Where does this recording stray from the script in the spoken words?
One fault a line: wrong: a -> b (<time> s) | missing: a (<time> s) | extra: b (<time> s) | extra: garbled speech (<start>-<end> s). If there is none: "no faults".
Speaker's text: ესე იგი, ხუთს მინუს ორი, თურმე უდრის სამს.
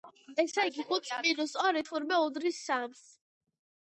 no faults